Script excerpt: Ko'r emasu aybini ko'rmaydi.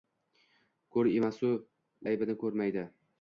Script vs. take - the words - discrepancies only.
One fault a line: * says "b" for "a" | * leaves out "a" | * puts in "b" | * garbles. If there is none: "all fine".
all fine